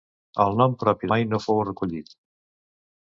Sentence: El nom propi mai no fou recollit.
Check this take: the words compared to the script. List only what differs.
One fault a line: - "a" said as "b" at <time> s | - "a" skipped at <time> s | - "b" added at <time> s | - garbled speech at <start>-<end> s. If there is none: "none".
none